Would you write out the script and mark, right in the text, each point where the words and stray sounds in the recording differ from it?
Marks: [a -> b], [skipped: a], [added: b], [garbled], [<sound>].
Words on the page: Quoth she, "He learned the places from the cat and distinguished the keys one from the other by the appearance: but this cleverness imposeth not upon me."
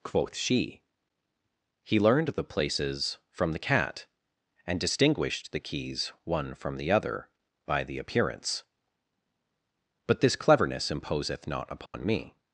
Quoth she, "He learned the places from the cat and distinguished the keys one from the other by the appearance: but this cleverness imposeth not upon [dropout] me."